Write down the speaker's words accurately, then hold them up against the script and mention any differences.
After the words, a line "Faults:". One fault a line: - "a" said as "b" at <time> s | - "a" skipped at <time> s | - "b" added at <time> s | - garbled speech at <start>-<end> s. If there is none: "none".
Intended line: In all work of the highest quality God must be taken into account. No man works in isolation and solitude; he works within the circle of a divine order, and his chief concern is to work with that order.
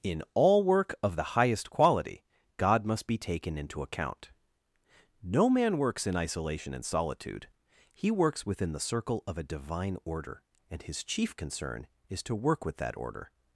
In all work of the highest quality God must be taken into account. No man works in isolation and solitude; he works within the circle of a divine order, and his chief concern is to work with that order.
Faults:
none